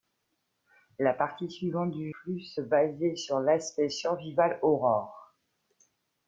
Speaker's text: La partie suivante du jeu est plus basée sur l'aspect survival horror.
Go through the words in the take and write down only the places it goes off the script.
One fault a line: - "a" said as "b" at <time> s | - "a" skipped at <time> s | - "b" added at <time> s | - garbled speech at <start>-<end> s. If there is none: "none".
- "jeu est" skipped at 2.1 s